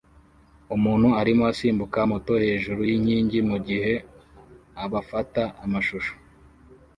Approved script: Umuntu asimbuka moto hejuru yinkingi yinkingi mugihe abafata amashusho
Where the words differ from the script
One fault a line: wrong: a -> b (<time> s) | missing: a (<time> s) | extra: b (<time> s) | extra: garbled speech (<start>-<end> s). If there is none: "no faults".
extra: arimo (1.2 s)
missing: yinkingi (3.4 s)